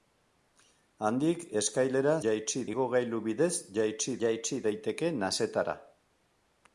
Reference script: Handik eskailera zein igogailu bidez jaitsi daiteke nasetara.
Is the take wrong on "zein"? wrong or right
wrong